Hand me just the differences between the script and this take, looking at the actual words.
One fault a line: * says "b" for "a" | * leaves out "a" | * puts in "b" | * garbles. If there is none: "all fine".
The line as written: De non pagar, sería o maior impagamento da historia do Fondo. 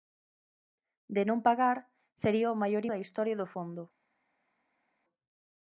* leaves out "impagamento"